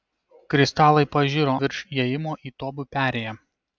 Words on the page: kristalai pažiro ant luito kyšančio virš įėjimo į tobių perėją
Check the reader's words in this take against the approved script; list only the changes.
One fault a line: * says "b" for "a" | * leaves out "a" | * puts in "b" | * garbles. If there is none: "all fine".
* leaves out "ant luito kyšančio"